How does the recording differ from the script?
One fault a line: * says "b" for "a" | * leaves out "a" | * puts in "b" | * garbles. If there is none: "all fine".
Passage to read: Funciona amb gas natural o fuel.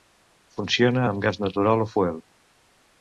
all fine